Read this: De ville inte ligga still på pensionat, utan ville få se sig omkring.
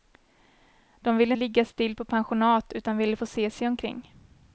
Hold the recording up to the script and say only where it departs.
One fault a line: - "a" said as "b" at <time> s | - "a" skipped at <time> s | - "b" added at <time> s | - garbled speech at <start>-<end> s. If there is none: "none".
- "inte" skipped at 1.3 s